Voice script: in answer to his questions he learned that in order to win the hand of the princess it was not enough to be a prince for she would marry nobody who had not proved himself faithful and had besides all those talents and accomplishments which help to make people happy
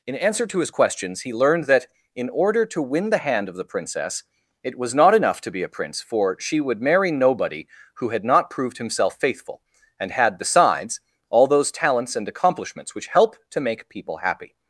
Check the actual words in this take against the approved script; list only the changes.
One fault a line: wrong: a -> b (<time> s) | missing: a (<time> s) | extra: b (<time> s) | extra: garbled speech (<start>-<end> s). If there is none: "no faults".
no faults